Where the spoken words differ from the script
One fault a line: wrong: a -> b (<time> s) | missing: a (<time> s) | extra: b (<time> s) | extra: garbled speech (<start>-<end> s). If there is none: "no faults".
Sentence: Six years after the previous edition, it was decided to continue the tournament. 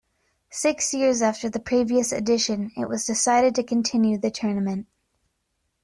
no faults